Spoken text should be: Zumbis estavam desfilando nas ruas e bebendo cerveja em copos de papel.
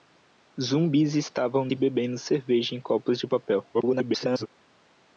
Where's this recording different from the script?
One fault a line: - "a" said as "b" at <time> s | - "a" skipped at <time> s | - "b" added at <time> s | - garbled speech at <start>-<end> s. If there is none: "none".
- "desfilando nas ruas" skipped at 1.7 s
- garbled speech at 3.7-4.5 s